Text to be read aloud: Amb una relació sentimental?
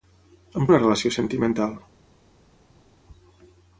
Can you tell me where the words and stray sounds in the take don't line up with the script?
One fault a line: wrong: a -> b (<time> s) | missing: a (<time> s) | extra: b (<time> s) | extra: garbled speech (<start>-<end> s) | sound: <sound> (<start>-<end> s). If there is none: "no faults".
no faults